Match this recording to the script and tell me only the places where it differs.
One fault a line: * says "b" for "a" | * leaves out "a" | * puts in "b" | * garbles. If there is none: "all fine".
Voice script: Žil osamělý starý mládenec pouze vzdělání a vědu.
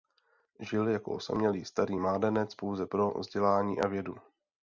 * puts in "jako"
* puts in "pro"